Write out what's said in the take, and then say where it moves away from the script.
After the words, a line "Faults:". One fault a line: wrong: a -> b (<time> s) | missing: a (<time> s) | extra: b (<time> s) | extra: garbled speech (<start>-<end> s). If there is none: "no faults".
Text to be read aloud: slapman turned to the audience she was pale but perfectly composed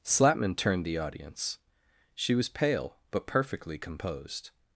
slapman turned the audience she was pale but perfectly composed
Faults:
missing: to (0.8 s)